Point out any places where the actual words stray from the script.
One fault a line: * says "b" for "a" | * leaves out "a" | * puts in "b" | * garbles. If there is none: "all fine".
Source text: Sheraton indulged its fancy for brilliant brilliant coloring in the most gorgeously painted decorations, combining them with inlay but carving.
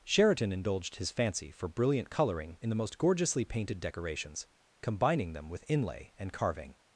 * says "his" for "its"
* leaves out "brilliant"
* says "and" for "but"